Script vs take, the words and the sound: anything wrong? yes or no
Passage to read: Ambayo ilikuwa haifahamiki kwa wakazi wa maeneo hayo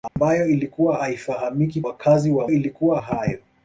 yes